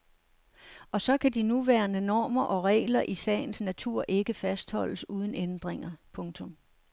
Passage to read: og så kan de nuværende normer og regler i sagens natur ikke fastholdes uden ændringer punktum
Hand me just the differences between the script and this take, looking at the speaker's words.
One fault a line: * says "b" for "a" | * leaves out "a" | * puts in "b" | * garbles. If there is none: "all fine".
all fine